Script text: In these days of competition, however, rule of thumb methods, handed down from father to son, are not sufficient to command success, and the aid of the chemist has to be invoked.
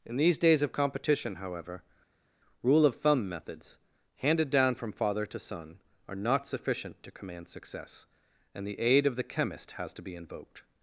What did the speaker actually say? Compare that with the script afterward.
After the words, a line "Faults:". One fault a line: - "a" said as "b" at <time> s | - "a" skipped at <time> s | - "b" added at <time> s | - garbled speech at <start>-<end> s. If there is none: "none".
In these days of competition, however, rule of thumb methods, handed down from father to son, are not sufficient to command success, and the aid of the chemist has to be invoked.
Faults:
none